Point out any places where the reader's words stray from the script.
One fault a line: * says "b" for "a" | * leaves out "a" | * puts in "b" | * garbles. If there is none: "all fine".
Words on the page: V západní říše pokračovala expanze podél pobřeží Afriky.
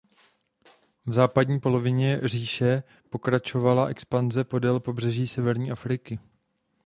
* puts in "polovině"
* puts in "severní"